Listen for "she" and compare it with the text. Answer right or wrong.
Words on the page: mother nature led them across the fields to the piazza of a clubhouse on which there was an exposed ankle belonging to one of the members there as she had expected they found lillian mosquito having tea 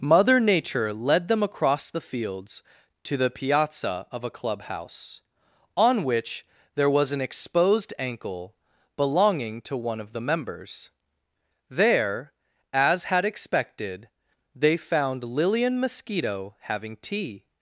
wrong